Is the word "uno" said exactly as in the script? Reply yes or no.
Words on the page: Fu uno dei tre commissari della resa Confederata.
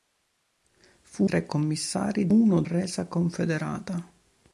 no